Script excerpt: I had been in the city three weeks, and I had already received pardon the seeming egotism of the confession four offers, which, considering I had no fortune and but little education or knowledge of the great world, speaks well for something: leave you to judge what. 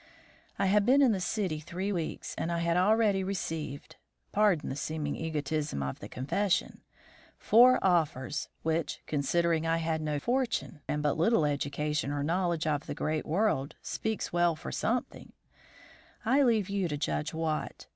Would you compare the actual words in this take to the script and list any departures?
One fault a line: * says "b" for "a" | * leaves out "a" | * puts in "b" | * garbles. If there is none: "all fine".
* puts in "I"